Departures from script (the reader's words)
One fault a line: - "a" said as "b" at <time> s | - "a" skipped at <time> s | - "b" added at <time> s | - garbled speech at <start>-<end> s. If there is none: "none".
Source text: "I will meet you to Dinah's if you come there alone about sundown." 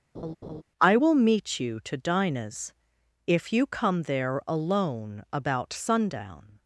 none